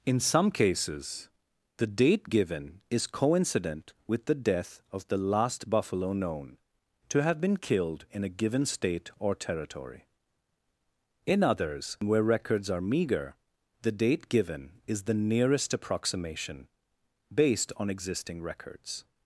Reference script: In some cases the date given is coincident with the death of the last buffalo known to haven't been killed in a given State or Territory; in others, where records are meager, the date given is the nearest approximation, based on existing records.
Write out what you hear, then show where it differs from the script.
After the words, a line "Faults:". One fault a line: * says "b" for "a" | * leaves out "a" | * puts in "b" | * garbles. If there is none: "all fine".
In some cases the date given is coincident with the death of the last buffalo known to have been killed in a given State or Territory; in others, where records are meager, the date given is the nearest approximation, based on existing records.
Faults:
* says "have" for "haven't"